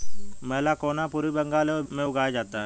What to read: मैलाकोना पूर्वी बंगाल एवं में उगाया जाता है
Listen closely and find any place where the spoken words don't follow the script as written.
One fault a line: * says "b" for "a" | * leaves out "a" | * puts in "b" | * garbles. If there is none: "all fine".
all fine